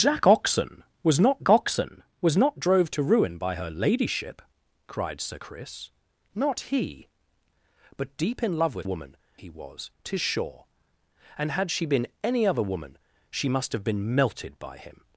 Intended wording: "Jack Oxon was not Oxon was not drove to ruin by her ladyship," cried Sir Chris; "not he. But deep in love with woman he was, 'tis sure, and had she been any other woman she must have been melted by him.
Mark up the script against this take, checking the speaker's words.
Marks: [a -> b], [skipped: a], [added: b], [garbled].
"Jack Oxon was not Oxon was not drove to ruin by her ladyship," cried Sir Chris; "not he. But deep in love with woman he was, 'tis sure, and had she been any other woman she must have been melted by him.